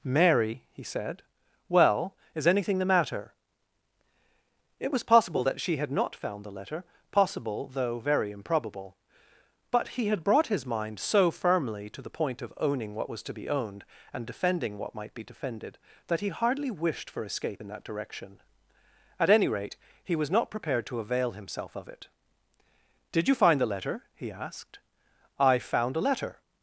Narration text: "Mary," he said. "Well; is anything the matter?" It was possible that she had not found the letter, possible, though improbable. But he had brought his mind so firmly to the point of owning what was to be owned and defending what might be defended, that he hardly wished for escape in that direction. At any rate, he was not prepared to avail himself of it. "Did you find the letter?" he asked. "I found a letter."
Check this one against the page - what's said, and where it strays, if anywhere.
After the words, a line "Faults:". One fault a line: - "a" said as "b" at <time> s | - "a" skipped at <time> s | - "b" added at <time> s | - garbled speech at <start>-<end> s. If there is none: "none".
"Mary," he said. "Well; is anything the matter?" It was possible that she had not found the letter, possible, though very improbable. But he had brought his mind so firmly to the point of owning what was to be owned and defending what might be defended, that he hardly wished for escape in that direction. At any rate, he was not prepared to avail himself of it. "Did you find the letter?" he asked. "I found a letter."
Faults:
- "very" added at 8.0 s